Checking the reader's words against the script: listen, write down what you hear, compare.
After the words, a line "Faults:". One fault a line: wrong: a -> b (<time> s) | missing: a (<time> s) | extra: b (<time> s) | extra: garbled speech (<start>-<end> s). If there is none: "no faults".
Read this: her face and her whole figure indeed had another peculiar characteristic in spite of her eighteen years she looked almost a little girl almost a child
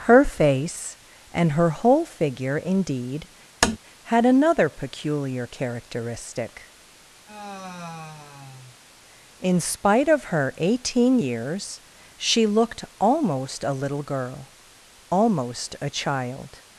her face and her whole figure indeed had another peculiar characteristic in spite of her eighteen years she looked almost a little girl almost a child
Faults:
no faults